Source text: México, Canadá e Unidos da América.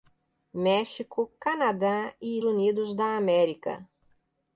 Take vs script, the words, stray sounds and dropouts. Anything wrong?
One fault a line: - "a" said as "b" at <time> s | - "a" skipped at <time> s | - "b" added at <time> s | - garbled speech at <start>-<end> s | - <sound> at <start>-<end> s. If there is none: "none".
none